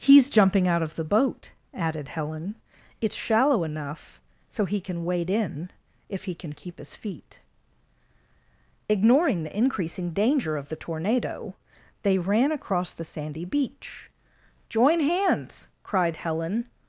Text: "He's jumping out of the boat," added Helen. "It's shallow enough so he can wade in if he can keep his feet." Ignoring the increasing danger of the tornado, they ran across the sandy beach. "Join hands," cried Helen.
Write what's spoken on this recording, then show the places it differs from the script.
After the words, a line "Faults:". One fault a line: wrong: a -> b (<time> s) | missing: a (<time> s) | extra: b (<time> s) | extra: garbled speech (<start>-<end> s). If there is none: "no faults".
"He's jumping out of the boat," added Helen. "It's shallow enough so he can wade in if he can keep his feet." Ignoring the increasing danger of the tornado, they ran across the sandy beach. "Join hands," cried Helen.
Faults:
no faults